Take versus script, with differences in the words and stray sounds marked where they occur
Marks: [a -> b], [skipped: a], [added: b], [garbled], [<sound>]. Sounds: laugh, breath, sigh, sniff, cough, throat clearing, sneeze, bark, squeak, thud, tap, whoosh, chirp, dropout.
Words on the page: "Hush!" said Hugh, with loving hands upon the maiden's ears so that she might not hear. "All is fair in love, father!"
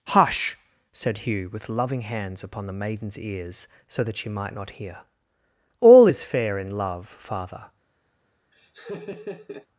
"Hush!" said Hugh, with loving hands upon the maiden's ears so that she might not hear. "All is fair in love, father!" [laugh]